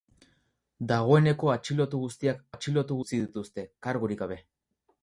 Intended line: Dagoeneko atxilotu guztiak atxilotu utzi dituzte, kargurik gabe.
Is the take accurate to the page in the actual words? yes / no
yes